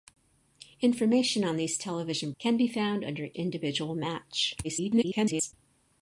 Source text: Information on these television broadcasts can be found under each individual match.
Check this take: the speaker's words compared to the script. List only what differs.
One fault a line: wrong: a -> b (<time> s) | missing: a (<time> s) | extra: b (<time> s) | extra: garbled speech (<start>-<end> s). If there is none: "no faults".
missing: broadcasts (2.3 s)
missing: each (3.3 s)
extra: garbled speech (4.6-5.5 s)